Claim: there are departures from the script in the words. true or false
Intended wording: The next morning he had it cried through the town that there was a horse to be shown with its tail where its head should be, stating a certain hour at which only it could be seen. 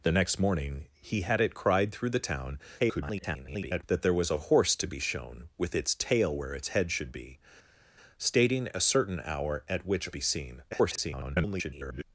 true